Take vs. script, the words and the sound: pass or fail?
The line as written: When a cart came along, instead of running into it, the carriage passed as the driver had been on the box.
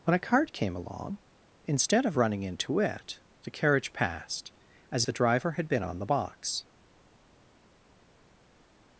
pass